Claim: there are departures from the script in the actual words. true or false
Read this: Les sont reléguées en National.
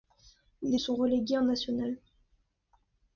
false